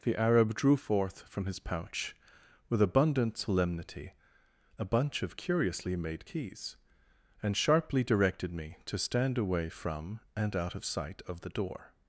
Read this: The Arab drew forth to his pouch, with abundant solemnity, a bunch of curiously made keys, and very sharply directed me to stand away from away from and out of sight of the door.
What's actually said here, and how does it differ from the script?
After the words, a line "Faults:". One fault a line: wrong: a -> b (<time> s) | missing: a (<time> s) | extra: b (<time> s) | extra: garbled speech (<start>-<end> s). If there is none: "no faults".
The Arab drew forth from his pouch, with abundant solemnity, a bunch of curiously made keys, and sharply directed me to stand away from and out of sight of the door.
Faults:
wrong: to -> from (1.2 s)
missing: very (7.5 s)
missing: away from (10.2 s)